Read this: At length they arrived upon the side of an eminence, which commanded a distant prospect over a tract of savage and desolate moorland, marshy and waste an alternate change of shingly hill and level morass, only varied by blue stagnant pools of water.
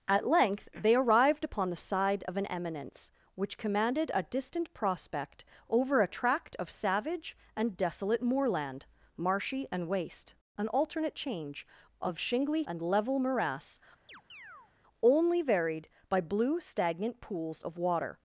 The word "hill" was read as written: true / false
false